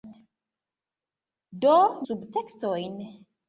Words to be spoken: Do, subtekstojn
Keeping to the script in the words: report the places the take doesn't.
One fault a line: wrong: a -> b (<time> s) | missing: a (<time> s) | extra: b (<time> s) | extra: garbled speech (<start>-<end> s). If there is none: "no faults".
no faults